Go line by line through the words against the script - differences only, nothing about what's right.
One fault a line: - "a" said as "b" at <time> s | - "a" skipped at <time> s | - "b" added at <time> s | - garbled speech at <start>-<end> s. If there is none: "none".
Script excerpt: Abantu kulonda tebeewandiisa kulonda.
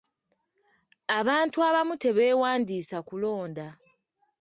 - "kulonda" said as "abamu" at 1.7 s